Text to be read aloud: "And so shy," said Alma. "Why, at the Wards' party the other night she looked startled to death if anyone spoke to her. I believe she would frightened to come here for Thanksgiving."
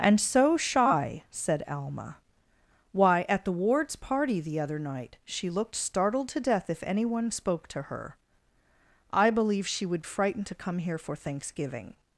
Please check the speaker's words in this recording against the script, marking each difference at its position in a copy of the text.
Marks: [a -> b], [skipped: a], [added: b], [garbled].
"And so shy," said Alma. "Why, at the Wards' party the other night she looked startled to death if anyone spoke to her. I believe she would frightened to come here for Thanksgiving."